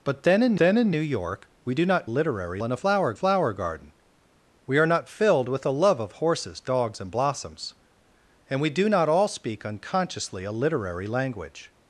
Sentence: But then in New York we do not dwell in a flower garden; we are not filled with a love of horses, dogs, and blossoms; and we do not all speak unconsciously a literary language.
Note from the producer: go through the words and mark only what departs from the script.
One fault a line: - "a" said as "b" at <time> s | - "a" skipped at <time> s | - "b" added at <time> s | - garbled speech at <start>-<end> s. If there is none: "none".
- "then in" added at 0.6 s
- "dwell" said as "literary" at 2.1 s
- "flower" added at 3.1 s